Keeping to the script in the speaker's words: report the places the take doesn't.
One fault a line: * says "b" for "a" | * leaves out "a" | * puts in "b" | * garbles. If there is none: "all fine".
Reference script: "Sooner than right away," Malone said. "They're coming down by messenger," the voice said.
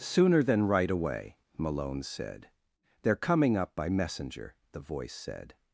* says "up" for "down"